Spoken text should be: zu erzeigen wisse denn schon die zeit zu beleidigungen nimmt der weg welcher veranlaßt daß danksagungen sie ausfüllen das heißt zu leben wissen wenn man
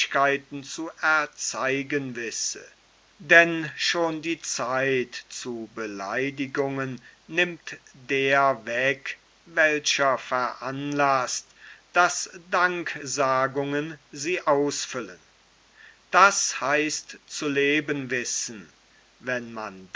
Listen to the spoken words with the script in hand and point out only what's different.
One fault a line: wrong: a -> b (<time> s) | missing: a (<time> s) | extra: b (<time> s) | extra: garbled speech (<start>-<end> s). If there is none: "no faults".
no faults